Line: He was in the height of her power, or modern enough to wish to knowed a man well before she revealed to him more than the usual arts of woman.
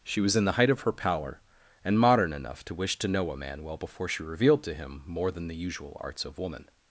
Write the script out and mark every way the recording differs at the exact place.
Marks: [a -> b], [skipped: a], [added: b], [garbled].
[He -> She] was in the height of her power, [or -> and] modern enough to wish to [knowed -> know] a man well before she revealed to him more than the usual arts of woman.